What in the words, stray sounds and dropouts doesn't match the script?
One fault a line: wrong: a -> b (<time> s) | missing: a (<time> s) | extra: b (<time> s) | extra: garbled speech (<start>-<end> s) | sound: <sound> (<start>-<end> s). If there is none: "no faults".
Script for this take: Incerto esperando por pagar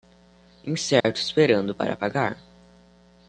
sound: dropout (1.0-1.0 s)
wrong: por -> para (1.7 s)